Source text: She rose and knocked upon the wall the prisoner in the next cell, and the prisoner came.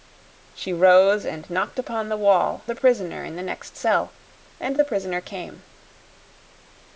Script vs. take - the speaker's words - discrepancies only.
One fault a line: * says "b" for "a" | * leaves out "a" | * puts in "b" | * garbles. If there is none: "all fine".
all fine